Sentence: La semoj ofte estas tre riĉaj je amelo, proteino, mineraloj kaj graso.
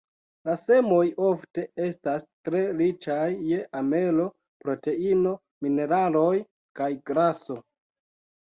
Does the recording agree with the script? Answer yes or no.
yes